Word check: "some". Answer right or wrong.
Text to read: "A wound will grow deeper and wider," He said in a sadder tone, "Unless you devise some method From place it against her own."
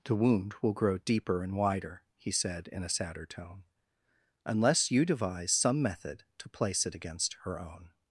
right